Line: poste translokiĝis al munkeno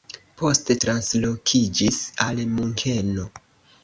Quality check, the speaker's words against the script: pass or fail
pass